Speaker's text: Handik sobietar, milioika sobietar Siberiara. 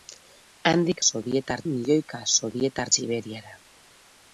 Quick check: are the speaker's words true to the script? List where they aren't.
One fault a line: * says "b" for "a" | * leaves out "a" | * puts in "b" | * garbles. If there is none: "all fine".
all fine